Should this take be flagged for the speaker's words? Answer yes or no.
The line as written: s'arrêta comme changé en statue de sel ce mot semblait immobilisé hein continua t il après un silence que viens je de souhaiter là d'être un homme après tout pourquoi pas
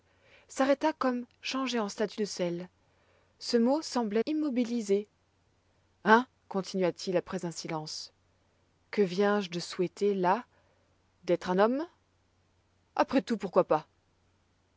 no